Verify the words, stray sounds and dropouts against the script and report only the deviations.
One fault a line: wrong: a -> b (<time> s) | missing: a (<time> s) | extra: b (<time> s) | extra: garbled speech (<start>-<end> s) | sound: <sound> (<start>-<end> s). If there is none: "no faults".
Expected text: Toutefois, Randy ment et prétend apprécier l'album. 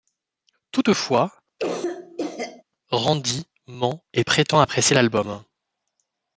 sound: cough (1.6-2.6 s)